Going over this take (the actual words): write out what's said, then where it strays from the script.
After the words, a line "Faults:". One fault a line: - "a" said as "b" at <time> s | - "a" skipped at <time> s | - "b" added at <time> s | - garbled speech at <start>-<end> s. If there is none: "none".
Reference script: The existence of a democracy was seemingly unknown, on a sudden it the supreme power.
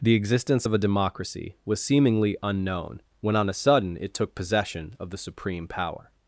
The existence of a democracy was seemingly unknown, when on a sudden it took possession of the supreme power.
Faults:
- "when" added at 3.2 s
- "took possession of" added at 4.1 s